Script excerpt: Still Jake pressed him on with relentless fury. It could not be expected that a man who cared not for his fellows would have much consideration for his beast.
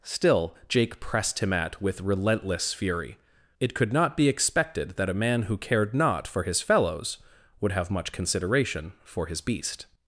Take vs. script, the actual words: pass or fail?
fail